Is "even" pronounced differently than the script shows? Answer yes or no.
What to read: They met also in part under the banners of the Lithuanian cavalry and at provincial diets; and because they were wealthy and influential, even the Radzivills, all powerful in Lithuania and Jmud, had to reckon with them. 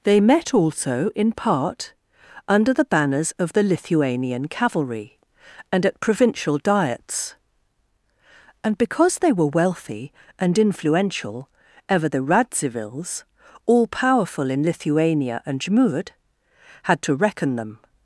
yes